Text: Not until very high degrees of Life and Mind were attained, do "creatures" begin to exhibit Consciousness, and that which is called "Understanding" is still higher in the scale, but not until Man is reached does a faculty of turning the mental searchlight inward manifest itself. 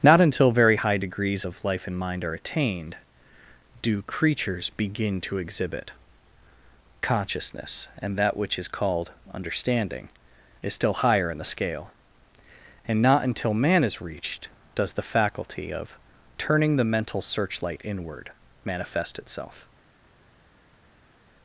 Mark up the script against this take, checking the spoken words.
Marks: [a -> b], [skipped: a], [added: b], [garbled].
Not until very high degrees of Life and Mind [were -> are] attained, do "creatures" begin to exhibit Consciousness, and that which is called "Understanding" is still higher in the scale, [but -> and] not until Man is reached does [a -> the] faculty of turning the mental searchlight inward manifest itself.